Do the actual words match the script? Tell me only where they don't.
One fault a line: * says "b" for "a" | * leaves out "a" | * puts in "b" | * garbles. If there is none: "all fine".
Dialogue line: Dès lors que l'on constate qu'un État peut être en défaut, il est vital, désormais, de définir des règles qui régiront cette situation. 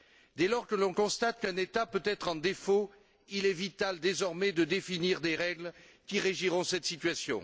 all fine